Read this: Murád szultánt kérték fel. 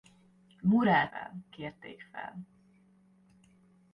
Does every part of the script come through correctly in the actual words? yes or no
no